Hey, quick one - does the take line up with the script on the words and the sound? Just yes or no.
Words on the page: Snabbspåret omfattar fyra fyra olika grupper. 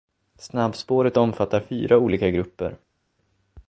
no